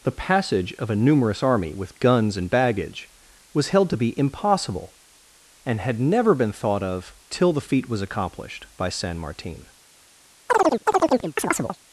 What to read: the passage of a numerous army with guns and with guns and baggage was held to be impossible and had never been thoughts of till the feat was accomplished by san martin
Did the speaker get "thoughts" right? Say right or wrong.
wrong